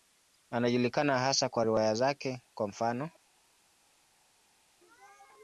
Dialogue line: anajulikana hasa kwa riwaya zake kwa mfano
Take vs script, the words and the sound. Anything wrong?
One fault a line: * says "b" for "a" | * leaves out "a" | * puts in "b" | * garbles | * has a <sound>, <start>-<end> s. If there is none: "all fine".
all fine